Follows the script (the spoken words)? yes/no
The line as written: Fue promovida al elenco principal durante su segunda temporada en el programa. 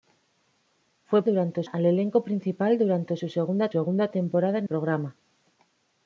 no